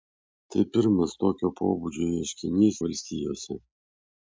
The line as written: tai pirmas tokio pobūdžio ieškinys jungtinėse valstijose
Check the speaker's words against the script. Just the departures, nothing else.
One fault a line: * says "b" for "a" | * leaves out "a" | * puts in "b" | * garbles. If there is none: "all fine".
* leaves out "jungtinėse"